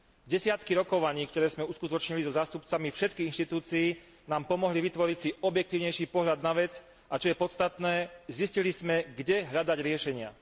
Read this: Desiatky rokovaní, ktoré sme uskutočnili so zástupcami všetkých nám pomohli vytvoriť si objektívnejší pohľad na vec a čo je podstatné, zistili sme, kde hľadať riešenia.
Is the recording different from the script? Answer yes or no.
yes